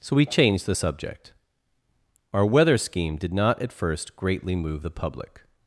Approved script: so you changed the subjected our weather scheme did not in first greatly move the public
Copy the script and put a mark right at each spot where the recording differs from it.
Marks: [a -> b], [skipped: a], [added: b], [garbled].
so [you -> we] changed the [subjected -> subject] our weather scheme did not [in -> at] first greatly move the public